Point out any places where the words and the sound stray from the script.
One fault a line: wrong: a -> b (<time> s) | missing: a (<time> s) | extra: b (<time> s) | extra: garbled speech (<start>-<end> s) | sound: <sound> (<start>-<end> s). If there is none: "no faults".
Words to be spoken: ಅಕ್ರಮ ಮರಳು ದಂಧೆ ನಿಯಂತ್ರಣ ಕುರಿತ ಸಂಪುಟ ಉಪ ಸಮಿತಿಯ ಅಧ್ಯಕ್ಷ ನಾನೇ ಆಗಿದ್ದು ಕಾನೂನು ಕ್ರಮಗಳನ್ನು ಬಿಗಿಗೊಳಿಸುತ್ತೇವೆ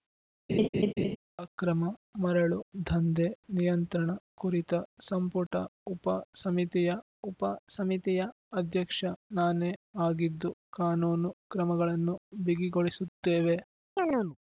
sound: laugh (0.5-1.2 s)
extra: ಉಪ ಸಮಿತಿಯ (7.2 s)
sound: chirp (14.0-14.4 s)